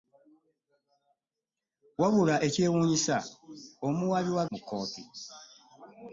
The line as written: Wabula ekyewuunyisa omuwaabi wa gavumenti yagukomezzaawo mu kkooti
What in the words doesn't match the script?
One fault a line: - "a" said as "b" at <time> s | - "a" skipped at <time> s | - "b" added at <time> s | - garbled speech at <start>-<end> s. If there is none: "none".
- "gavumenti yagukomezzaawo" skipped at 4.4 s